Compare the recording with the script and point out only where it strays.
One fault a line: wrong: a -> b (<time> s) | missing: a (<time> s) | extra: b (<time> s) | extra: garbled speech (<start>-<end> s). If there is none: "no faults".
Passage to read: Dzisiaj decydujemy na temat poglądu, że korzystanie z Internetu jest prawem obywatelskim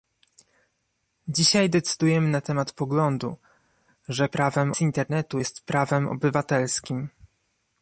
wrong: korzystanie -> prawem (4.3 s)